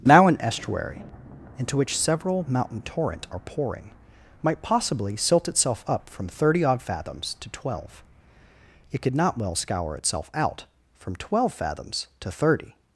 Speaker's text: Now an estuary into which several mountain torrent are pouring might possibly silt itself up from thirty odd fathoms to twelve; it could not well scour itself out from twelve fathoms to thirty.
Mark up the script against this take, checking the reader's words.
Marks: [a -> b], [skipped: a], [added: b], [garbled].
Now an estuary into which several mountain torrent are pouring might possibly silt itself up from thirty odd fathoms to twelve; it could not well scour itself out from twelve fathoms to thirty.